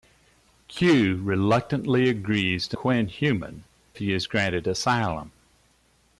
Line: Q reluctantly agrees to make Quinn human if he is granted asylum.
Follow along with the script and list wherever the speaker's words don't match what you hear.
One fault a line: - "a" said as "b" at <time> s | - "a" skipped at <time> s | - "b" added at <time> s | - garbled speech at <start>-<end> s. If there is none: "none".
- "make" skipped at 2.8 s
- "if" skipped at 3.6 s